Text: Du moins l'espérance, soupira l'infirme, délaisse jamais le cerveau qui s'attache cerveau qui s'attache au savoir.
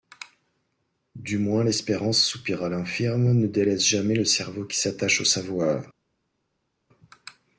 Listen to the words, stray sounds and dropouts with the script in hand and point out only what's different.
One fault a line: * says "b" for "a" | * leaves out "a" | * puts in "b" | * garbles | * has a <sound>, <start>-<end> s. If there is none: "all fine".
* puts in "ne"
* leaves out "cerveau qui s'attache"